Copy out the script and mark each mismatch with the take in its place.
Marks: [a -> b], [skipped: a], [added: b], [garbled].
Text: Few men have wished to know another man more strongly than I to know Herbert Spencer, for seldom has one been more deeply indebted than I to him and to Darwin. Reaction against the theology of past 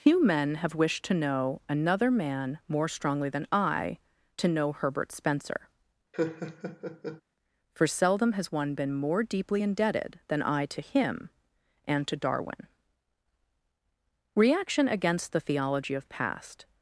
Few men have wished to know another man more strongly than I to know Herbert Spencer, for seldom has one been more deeply indebted than I to him and to Darwin. Reaction against the theology of past